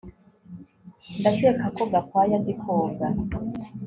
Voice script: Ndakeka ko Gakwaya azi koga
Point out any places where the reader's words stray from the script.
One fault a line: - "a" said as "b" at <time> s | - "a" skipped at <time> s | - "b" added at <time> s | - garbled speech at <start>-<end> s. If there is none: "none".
none